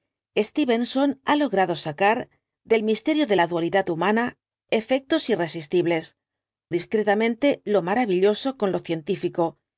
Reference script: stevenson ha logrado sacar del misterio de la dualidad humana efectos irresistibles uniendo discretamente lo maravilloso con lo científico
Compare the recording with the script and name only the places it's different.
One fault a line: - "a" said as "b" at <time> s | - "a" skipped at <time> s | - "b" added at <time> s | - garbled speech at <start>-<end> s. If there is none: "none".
- "uniendo" skipped at 6.2 s